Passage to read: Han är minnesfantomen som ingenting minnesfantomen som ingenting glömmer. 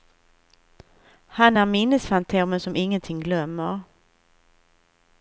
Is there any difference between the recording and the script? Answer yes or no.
yes